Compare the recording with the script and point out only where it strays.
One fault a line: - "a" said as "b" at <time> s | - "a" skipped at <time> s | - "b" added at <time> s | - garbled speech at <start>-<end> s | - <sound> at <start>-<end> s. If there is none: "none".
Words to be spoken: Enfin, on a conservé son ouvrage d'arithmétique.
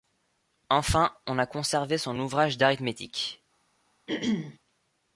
- throat clearing at 4.1-4.6 s